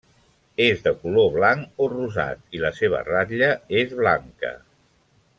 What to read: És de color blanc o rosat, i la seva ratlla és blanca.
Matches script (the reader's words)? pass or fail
pass